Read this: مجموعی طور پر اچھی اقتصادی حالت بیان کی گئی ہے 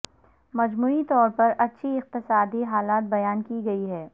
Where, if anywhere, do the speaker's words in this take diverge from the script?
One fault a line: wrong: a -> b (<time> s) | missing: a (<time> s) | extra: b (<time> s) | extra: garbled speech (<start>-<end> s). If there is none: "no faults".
no faults